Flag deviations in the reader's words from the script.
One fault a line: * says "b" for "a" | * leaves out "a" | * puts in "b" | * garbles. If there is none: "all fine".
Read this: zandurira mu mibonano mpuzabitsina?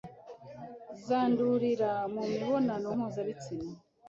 all fine